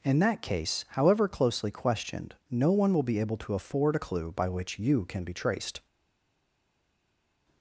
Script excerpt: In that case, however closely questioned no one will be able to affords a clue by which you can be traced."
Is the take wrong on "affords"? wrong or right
wrong